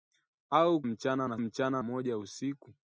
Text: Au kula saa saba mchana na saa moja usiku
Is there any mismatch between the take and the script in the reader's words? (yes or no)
yes